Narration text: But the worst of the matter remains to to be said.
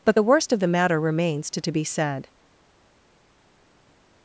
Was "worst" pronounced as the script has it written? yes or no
yes